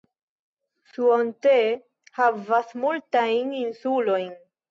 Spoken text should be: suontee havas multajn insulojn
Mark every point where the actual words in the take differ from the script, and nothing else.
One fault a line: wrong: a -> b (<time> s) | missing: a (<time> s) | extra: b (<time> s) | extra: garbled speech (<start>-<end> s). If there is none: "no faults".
no faults